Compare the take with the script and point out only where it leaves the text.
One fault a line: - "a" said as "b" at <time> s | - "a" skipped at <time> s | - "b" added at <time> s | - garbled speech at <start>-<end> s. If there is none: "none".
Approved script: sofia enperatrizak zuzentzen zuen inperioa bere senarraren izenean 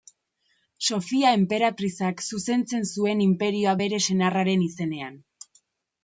none